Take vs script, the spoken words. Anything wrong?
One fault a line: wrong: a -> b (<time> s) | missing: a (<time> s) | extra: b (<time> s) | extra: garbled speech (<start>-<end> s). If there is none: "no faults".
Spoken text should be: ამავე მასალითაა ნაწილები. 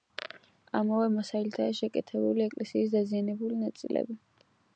extra: შეკეთებული ეკლესიის დაზიანებული (1.8 s)